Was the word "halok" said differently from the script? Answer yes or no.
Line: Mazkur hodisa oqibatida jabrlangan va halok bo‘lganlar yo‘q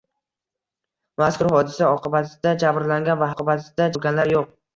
yes